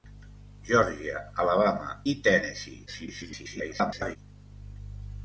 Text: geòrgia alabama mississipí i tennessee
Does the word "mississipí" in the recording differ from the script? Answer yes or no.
yes